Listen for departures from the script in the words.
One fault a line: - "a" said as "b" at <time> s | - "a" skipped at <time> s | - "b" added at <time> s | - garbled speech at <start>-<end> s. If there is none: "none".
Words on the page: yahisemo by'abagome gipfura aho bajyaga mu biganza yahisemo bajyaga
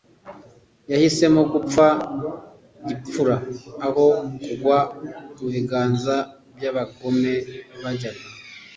- "by'abagome" said as "gupfa" at 1.5 s
- "bajyaga" said as "kugwa" at 4.4 s
- "yahisemo" said as "by'abagome" at 6.5 s